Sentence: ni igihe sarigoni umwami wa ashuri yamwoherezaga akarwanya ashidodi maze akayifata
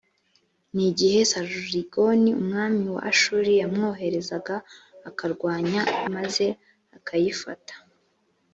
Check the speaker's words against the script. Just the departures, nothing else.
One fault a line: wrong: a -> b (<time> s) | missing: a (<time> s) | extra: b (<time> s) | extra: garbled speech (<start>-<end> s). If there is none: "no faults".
missing: ashidodi (5.8 s)